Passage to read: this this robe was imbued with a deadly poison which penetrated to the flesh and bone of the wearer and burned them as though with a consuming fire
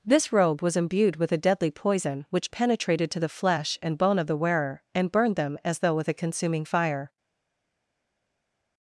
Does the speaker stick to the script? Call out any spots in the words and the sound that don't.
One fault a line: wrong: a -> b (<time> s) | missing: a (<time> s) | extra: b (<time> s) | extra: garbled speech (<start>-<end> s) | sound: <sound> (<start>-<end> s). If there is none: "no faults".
missing: this (0.3 s)